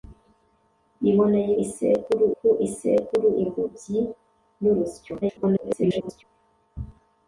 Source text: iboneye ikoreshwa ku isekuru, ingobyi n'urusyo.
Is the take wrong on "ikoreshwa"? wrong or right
wrong